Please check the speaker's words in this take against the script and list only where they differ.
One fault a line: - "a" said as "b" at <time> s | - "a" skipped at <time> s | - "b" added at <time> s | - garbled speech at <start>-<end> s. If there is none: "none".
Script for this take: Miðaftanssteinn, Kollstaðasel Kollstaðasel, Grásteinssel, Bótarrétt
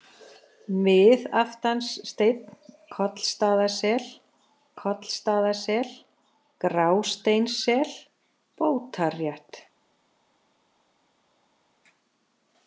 none